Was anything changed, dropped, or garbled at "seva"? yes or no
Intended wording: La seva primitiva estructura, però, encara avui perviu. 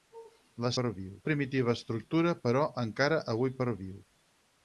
yes